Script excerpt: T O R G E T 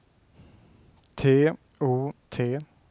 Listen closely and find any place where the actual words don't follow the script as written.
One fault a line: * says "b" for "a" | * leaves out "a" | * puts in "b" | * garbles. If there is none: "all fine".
* leaves out "R G E"